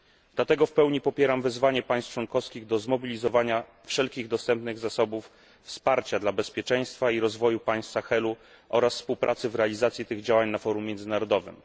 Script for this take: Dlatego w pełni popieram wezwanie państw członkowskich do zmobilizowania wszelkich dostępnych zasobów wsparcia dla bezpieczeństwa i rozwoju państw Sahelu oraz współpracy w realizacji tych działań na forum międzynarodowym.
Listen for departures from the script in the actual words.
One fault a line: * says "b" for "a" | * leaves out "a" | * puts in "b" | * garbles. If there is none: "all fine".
all fine